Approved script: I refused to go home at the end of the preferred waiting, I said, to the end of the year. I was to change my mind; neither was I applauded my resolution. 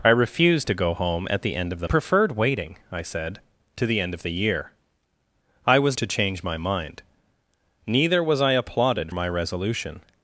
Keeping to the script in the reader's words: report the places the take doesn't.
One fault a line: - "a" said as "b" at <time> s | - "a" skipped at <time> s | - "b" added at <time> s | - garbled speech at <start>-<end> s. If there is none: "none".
none